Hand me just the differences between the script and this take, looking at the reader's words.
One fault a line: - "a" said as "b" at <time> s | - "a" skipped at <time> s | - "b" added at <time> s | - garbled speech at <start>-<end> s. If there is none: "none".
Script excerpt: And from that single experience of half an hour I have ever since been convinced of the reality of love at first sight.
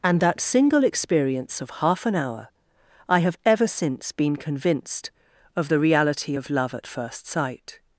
- "from" skipped at 0.2 s